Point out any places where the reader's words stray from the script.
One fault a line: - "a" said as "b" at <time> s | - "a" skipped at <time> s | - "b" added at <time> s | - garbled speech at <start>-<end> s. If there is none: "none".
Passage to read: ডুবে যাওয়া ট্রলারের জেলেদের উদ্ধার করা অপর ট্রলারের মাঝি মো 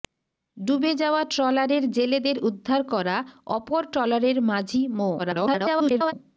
- garbled speech at 5.2-6.1 s